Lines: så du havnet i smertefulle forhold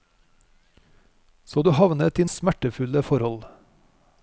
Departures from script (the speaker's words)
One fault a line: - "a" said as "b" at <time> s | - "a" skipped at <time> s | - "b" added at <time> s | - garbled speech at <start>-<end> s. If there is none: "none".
none